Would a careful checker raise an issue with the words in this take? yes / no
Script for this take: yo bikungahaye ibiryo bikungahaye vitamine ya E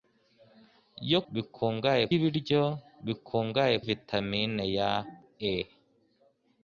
no